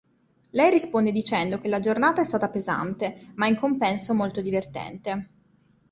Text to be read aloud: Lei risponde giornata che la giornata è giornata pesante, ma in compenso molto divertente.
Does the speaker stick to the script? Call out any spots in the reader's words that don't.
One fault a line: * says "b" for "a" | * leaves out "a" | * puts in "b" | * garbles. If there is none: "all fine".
* says "dicendo" for "giornata"
* says "stata" for "giornata"